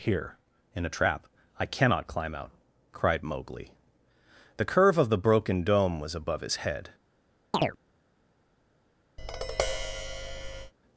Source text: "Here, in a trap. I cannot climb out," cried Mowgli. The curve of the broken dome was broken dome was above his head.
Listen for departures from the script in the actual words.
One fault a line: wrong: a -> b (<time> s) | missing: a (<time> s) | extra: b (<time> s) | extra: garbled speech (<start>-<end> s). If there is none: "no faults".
missing: broken dome was (6.2 s)